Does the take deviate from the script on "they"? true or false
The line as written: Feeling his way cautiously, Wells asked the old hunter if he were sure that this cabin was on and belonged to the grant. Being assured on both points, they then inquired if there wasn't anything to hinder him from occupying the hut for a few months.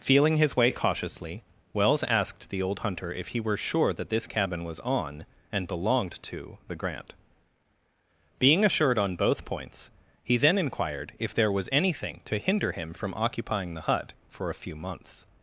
true